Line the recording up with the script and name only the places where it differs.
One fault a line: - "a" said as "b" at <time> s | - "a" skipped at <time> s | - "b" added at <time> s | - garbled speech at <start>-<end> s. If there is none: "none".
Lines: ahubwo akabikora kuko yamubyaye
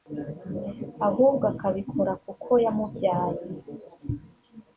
none